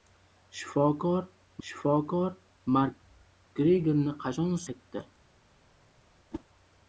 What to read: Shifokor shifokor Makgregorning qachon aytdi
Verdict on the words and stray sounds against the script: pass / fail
fail